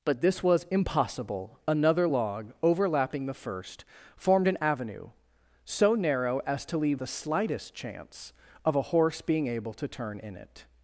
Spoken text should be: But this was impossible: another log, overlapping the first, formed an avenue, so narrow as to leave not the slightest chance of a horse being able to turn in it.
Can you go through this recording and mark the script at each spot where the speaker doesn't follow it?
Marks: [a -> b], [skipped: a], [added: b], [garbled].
But this was impossible: another log, overlapping the first, formed an avenue, so narrow as to leave [skipped: not] the slightest chance of a horse being able to turn in it.